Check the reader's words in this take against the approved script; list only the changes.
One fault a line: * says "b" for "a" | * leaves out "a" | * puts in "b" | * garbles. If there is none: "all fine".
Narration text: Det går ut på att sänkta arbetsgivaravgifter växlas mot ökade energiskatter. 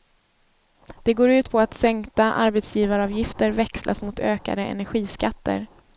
all fine